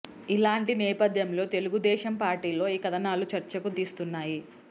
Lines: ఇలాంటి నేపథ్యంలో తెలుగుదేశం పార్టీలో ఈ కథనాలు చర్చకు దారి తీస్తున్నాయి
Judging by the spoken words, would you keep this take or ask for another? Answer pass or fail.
fail